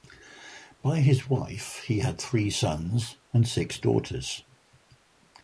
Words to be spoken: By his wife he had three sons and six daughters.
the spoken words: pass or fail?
pass